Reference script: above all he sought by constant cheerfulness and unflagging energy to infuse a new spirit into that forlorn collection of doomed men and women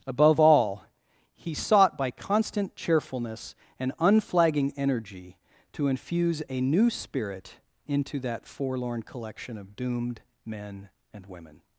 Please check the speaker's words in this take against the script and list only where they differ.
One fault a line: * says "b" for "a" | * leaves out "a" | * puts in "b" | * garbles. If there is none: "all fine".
all fine